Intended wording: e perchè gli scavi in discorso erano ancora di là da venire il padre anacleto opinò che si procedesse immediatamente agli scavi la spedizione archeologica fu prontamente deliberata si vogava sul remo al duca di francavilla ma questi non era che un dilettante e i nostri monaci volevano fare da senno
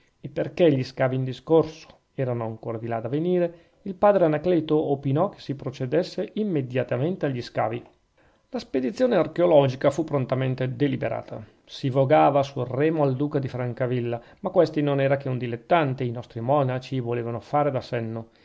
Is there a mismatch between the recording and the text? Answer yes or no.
no